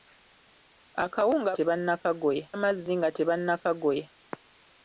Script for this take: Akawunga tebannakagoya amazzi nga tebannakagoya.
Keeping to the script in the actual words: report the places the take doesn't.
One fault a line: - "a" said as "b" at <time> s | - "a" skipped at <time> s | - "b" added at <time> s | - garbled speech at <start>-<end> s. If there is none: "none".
none